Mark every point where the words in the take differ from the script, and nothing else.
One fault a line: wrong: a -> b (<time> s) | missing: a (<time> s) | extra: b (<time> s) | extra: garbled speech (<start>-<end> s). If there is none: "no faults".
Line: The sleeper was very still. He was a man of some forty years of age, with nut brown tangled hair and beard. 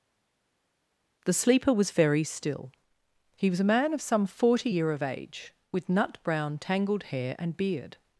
wrong: years -> year (4.7 s)